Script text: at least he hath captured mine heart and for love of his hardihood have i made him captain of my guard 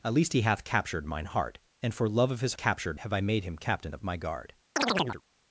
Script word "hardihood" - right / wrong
wrong